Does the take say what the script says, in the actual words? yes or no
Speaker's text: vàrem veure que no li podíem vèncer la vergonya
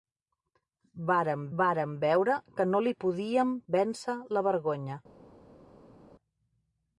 no